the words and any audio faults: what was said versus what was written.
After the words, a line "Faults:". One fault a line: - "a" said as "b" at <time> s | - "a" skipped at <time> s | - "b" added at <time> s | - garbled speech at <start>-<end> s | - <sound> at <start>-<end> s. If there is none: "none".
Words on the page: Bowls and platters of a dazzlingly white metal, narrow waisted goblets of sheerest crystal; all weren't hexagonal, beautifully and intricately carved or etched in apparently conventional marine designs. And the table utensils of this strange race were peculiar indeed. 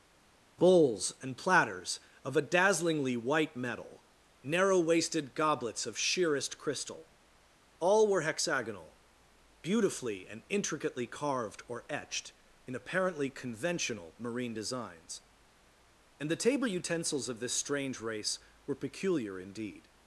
Bowls and platters of a dazzlingly white metal, narrow waisted goblets of sheerest crystal; all were hexagonal, beautifully and intricately carved or etched in apparently conventional marine designs. And the table utensils of this strange race were peculiar indeed.
Faults:
- "weren't" said as "were" at 8.1 s